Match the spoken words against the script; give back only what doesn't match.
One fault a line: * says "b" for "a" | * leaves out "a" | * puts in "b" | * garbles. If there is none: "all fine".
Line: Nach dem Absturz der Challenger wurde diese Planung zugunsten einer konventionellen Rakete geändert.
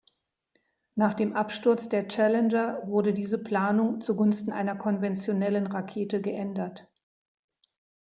all fine